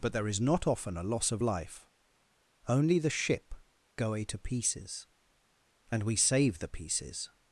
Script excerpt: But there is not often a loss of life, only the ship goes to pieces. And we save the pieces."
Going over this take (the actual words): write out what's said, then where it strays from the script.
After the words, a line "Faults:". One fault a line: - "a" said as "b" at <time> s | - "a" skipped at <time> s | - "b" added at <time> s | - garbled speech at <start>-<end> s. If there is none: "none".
But there is not often a loss of life, only the ship goe to pieces. And we save the pieces."
Faults:
- "goes" said as "goe" at 4.0 s